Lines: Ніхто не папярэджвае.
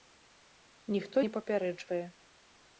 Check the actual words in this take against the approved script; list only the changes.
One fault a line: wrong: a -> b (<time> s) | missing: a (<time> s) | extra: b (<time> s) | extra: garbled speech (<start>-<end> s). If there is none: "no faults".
no faults